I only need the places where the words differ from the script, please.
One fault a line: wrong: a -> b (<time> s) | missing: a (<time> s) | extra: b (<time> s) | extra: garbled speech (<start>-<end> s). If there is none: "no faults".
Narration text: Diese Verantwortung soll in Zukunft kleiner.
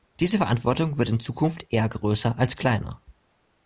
wrong: soll -> wird (1.0 s)
extra: eher größer als (1.7 s)